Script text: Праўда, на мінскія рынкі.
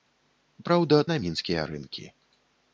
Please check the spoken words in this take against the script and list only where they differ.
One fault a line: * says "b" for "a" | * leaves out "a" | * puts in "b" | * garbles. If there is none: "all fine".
all fine